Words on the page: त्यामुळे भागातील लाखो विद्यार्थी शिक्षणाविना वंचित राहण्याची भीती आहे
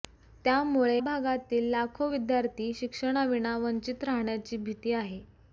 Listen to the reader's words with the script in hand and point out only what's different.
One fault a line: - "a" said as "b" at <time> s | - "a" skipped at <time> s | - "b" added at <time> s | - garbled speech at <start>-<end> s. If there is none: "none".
none